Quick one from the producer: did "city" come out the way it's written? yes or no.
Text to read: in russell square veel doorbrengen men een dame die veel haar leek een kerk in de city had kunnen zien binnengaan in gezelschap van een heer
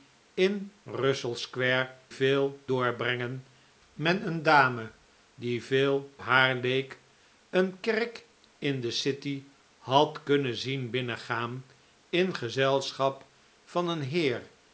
yes